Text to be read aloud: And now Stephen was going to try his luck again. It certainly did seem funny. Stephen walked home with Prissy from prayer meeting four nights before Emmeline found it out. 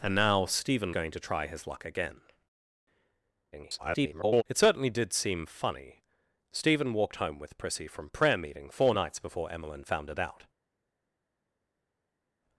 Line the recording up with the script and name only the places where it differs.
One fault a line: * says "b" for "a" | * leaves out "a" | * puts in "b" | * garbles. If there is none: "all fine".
* leaves out "was"
* garbles